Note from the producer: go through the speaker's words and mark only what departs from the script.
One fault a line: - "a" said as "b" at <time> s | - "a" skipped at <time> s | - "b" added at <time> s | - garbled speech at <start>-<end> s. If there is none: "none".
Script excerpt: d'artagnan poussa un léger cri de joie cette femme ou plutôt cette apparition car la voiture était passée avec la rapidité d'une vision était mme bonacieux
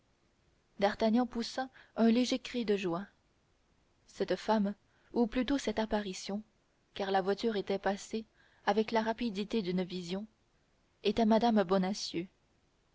none